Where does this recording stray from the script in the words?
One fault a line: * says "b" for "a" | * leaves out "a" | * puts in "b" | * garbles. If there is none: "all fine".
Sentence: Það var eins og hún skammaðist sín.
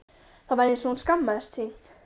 all fine